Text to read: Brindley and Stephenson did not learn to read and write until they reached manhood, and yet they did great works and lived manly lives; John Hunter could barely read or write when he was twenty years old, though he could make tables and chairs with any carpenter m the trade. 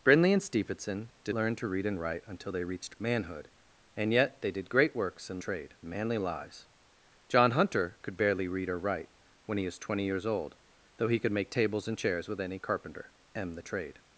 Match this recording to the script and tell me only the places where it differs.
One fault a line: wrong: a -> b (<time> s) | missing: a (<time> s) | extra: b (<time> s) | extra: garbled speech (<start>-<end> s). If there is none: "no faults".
missing: not (1.4 s)
wrong: lived -> trade (5.4 s)